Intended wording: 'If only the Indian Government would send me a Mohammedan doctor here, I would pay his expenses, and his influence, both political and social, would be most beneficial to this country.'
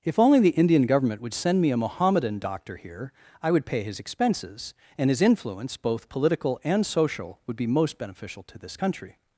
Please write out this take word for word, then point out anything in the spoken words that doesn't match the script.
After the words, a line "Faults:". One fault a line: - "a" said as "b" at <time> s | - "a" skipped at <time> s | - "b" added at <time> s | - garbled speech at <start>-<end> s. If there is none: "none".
'If only the Indian Government would send me a Mohammedan doctor here, I would pay his expenses, and his influence, both political and social, would be most beneficial to this country.'
Faults:
none